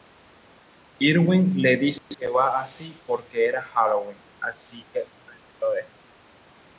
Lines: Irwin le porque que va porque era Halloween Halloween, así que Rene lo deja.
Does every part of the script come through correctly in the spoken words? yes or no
no